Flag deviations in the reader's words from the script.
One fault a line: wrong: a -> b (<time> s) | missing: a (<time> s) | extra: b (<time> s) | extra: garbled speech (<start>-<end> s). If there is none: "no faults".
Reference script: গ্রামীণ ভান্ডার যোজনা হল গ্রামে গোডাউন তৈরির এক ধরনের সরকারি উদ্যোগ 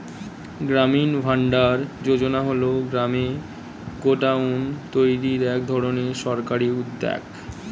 no faults